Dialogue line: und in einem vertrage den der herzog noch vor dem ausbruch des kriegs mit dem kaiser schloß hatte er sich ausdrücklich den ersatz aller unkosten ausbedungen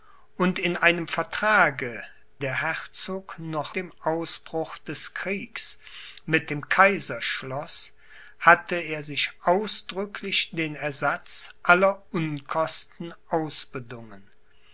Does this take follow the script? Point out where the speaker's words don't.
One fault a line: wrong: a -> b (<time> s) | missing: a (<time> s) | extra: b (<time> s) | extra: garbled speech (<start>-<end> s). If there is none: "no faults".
missing: den (2.0 s)
missing: vor (3.8 s)